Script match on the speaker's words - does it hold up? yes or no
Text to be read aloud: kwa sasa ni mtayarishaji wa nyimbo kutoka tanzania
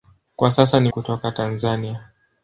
no